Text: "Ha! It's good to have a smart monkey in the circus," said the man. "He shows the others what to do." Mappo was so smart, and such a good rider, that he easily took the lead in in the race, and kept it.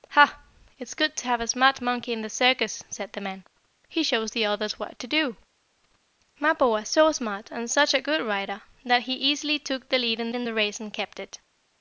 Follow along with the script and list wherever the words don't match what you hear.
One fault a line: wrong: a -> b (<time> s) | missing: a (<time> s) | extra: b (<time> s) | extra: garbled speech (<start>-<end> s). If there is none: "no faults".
no faults